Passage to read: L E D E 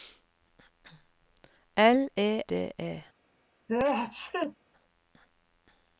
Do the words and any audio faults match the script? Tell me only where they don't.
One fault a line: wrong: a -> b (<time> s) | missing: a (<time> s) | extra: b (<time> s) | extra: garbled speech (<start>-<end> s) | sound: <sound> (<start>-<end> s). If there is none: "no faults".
sound: sneeze (3.7-4.6 s)